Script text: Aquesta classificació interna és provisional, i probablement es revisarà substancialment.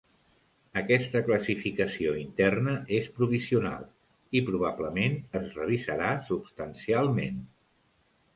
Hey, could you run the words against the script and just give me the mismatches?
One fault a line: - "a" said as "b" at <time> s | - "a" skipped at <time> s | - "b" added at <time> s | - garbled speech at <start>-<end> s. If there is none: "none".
none